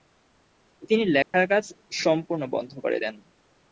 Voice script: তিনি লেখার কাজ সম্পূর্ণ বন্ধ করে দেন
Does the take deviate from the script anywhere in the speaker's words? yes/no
no